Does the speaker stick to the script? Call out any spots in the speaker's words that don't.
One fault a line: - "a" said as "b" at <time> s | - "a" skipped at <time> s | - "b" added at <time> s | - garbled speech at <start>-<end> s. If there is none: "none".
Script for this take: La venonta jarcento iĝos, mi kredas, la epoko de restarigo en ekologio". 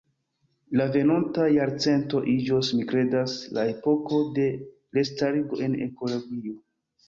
none